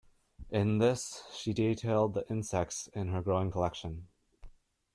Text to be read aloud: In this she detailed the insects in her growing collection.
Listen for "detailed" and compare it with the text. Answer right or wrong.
right